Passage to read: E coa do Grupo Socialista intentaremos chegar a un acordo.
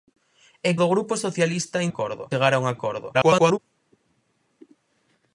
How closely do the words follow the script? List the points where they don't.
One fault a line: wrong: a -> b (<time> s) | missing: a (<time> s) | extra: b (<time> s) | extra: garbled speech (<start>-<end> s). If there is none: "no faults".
missing: coa (0.7 s)
wrong: intentaremos -> acordo (1.9 s)
extra: garbled speech (3.1-3.6 s)